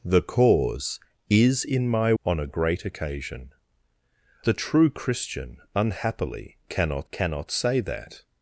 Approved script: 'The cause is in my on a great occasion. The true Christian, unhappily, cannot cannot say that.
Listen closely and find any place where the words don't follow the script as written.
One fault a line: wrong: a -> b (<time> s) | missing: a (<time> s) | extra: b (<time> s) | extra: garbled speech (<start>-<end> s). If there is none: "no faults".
no faults